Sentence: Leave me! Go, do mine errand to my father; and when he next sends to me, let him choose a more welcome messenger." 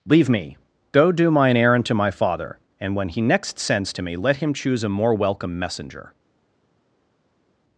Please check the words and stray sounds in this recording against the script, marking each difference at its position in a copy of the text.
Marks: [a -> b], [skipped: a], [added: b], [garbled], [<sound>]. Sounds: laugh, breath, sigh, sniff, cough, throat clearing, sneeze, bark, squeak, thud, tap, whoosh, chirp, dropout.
Leave me! Go, do mine errand to my father; and when he next sends to me, let him choose a more welcome messenger."